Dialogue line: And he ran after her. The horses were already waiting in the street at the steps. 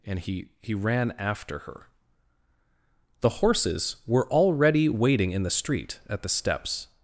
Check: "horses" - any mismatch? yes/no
no